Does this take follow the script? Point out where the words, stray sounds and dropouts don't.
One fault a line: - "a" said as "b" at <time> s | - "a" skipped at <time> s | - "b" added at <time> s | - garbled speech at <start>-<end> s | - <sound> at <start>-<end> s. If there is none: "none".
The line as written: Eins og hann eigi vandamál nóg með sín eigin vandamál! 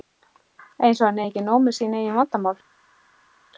- "vandamál" said as "ekki" at 1.3 s